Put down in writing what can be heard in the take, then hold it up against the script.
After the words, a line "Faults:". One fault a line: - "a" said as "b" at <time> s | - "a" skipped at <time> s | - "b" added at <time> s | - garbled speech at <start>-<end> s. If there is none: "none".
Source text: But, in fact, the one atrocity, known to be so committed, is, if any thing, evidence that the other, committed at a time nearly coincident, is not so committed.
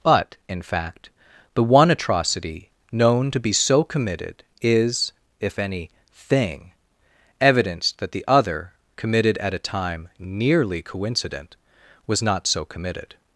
But, in fact, the one atrocity, known to be so committed, is, if any thing, evidence that the other, committed at a time nearly coincident, was not so committed.
Faults:
- "is" said as "was" at 12.1 s